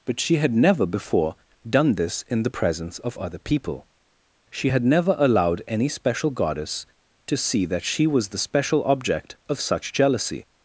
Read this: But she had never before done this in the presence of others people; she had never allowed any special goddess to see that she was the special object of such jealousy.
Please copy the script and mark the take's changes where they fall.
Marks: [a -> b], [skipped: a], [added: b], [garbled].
But she had never before done this in the presence of [others -> other] people; she had never allowed any special goddess to see that she was the special object of such jealousy.